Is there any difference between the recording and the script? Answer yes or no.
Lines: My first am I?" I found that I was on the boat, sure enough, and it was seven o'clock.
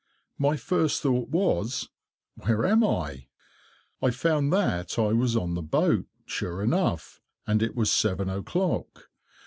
yes